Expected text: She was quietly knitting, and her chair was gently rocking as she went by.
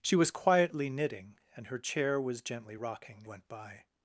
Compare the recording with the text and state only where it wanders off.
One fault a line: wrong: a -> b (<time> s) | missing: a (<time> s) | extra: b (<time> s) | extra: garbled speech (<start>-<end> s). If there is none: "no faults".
missing: as she (3.3 s)